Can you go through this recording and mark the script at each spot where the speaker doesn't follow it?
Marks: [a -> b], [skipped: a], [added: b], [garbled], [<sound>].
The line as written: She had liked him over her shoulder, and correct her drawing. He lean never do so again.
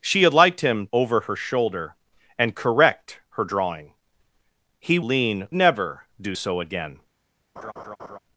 She had liked him over her shoulder, and correct her drawing. He lean never do so again. [laugh]